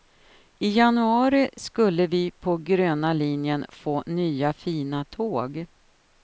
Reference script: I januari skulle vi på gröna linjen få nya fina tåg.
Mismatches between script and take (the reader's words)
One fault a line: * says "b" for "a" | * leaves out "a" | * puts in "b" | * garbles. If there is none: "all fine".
all fine